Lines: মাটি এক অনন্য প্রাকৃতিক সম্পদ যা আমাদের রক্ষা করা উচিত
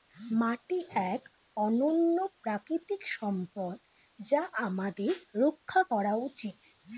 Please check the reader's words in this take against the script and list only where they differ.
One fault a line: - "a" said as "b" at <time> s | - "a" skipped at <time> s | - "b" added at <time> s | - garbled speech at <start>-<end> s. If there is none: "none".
none